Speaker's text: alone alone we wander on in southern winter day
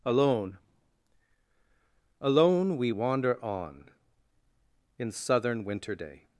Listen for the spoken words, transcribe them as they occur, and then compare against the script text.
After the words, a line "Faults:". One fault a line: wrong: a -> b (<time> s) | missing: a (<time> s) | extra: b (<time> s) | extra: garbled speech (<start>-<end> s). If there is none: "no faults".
alone alone we wander on in southern winter day
Faults:
no faults